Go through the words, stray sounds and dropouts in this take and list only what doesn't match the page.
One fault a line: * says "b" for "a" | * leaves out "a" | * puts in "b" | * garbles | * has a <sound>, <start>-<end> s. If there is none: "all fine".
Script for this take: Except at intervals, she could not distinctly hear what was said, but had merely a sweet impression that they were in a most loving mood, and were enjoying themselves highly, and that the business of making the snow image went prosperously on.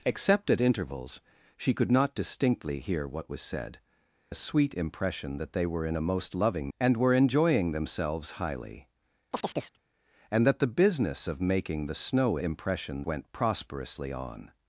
* leaves out "but had merely"
* leaves out "mood"
* has a chirp, 9.3-9.8 s
* says "impression" for "image"